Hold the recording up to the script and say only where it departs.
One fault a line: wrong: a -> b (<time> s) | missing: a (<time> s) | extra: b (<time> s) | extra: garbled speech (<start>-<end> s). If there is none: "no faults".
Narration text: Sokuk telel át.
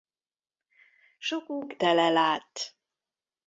no faults